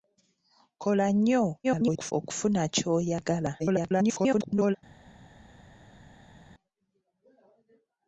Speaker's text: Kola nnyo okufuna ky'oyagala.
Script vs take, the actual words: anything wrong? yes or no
yes